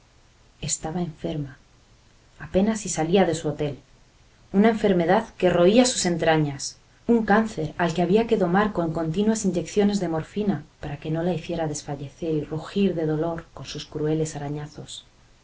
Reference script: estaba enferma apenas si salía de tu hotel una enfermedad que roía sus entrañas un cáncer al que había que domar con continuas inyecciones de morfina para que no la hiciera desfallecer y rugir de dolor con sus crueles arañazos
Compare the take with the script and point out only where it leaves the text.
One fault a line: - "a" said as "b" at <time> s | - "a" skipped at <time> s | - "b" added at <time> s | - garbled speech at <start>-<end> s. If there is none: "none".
- "tu" said as "su" at 3.4 s